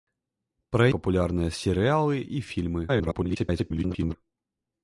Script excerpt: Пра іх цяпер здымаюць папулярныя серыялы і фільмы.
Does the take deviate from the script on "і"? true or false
false